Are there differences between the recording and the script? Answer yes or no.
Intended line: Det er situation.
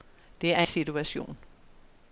no